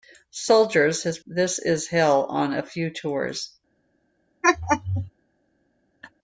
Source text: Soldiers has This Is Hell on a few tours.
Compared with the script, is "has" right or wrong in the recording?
right